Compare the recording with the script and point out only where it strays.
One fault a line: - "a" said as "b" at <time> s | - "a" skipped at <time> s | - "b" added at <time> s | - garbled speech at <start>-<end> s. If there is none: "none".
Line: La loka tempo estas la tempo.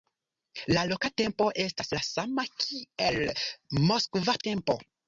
- "sama kiel moskva" added at 2.1 s